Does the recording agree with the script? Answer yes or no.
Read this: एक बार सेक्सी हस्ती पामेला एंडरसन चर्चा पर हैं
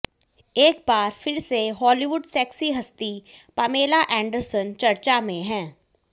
no